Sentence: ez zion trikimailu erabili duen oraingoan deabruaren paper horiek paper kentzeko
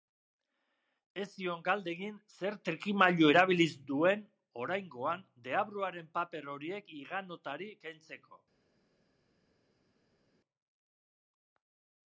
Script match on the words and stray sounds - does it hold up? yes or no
no